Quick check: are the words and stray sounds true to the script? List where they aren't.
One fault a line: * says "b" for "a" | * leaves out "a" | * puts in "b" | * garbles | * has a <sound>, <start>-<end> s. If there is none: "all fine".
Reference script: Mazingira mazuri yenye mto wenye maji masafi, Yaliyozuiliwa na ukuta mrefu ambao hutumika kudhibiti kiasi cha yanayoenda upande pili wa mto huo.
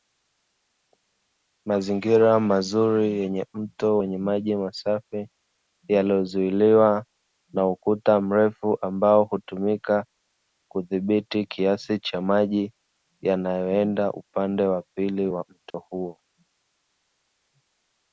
* puts in "maji"
* puts in "wa"
* has a dropout, 15.7-15.7 s